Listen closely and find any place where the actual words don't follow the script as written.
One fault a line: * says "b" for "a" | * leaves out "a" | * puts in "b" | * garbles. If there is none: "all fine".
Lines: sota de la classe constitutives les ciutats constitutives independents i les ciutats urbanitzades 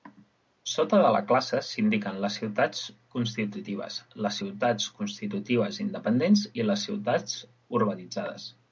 * puts in "s"indiquen les ciutats"